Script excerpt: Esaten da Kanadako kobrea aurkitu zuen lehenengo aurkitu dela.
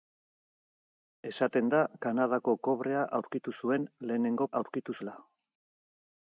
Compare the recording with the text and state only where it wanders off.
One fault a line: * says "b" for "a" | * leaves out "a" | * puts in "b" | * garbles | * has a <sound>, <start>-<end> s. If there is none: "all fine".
all fine